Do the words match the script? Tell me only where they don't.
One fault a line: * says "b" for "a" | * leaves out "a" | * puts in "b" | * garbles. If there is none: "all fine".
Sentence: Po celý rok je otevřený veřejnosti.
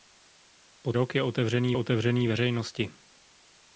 * leaves out "celý"
* puts in "otevřený"